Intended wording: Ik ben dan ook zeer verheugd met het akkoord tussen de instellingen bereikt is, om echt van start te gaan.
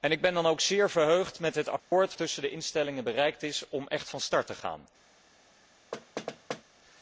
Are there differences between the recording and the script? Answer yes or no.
no